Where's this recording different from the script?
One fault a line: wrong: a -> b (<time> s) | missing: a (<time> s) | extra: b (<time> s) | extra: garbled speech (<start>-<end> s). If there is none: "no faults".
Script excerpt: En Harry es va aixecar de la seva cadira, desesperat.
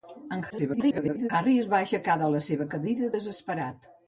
extra: garbled speech (0.5-1.3 s)